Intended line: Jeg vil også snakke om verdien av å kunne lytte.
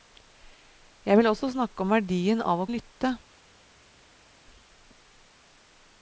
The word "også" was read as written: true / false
true